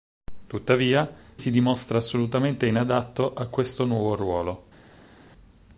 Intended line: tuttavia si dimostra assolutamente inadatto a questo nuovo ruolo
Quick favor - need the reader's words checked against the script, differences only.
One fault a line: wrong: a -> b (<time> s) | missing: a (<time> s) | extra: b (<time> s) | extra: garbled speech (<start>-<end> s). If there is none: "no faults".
no faults